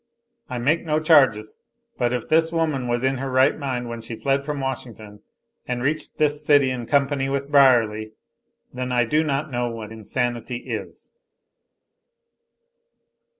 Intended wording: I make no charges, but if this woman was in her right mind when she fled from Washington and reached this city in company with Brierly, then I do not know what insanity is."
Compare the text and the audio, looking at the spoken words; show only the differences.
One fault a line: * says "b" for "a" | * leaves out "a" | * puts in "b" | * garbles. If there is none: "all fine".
all fine